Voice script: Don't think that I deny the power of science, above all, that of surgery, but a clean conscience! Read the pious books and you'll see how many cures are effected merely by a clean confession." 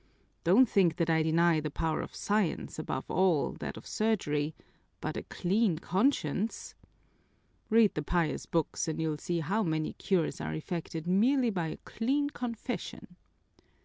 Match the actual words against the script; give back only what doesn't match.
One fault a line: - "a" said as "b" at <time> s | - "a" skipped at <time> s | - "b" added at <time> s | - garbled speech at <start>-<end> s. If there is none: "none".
none